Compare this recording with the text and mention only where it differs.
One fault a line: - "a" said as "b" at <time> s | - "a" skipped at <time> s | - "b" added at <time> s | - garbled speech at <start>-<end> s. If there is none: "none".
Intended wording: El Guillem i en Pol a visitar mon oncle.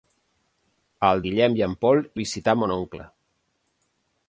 none